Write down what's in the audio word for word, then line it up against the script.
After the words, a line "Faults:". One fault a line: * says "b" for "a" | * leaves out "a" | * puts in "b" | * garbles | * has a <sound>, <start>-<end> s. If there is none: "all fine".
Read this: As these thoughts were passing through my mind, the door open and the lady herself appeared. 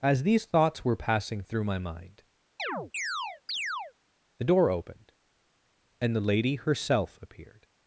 As these thoughts were passing through my mind, the door opened and the lady herself appeared.
Faults:
* has a chirp, 2.6-3.9 s
* says "opened" for "open"